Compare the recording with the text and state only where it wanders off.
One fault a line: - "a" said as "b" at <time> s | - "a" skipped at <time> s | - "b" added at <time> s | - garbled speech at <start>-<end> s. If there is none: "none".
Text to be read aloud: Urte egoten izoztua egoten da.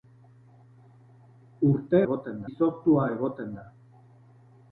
none